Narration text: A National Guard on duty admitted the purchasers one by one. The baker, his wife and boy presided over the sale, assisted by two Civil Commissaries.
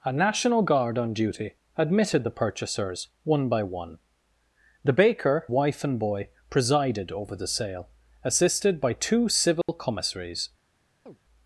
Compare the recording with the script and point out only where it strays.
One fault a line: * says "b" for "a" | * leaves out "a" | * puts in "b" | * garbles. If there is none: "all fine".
* leaves out "his"